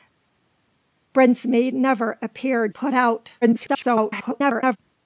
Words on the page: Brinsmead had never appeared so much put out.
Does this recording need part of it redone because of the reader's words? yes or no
yes